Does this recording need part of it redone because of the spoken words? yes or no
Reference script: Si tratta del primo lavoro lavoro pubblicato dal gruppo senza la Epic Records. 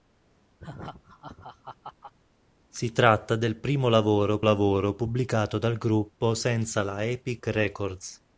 no